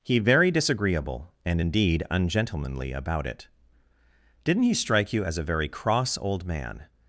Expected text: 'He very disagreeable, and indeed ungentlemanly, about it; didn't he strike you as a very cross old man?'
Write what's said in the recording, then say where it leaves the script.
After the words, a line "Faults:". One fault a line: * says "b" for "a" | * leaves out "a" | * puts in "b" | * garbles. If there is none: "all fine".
'He very disagreeable, and indeed ungentlemanly, about it; didn't he strike you as a very cross old man?'
Faults:
all fine